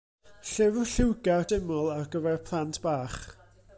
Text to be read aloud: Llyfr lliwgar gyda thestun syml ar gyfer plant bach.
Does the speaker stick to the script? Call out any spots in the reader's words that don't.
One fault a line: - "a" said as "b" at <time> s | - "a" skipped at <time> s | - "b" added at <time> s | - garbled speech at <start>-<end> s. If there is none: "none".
- "gyda thestun" skipped at 1.4 s